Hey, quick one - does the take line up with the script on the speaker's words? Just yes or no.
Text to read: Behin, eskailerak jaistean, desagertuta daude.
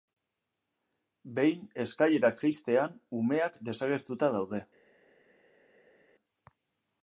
no